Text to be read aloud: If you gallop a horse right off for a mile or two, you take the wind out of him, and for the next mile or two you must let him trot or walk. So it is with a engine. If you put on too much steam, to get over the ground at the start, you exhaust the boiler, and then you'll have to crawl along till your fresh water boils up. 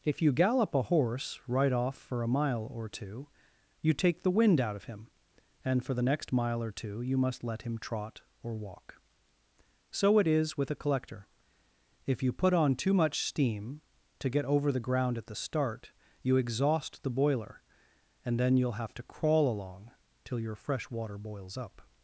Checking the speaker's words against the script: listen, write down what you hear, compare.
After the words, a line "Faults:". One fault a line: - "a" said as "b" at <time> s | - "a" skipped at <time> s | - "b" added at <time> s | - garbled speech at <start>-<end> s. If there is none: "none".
If you gallop a horse right off for a mile or two, you take the wind out of him, and for the next mile or two you must let him trot or walk. So it is with a collector. If you put on too much steam, to get over the ground at the start, you exhaust the boiler, and then you'll have to crawl along till your fresh water boils up.
Faults:
- "engine" said as "collector" at 10.8 s